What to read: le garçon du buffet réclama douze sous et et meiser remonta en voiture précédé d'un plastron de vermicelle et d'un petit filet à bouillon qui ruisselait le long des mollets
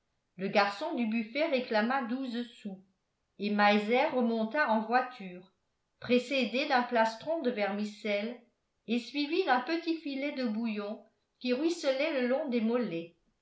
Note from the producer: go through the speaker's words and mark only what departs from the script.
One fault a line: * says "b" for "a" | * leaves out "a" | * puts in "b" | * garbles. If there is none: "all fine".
* leaves out "et"
* puts in "suivi"
* says "de" for "à"